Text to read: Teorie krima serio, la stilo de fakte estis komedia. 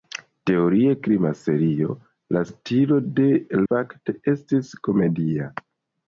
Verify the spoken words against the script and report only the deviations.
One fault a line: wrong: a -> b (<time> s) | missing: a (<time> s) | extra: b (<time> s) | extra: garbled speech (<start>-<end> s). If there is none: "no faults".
no faults